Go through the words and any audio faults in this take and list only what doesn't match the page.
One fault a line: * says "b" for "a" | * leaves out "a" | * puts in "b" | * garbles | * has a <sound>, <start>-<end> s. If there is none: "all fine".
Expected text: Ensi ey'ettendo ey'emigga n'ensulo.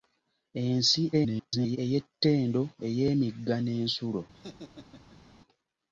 * garbles
* has a laugh, 4.3-5.3 s